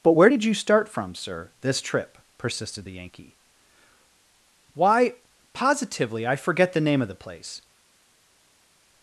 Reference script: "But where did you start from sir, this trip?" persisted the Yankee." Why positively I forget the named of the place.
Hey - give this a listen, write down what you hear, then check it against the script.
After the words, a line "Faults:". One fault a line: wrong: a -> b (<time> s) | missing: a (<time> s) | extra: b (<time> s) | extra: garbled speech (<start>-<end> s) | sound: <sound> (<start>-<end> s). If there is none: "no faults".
"But where did you start from sir, this trip?" persisted the Yankee." Why positively I forget the name of the place.
Faults:
wrong: named -> name (6.8 s)